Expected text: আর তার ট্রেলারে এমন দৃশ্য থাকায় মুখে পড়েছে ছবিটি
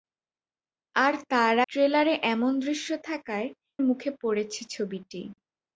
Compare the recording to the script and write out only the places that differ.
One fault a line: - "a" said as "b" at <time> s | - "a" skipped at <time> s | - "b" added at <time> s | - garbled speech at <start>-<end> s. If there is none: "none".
none